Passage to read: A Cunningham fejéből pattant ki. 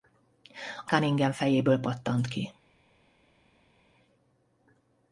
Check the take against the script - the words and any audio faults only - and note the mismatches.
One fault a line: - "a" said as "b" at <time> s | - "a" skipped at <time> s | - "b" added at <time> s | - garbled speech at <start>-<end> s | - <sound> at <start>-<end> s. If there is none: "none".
none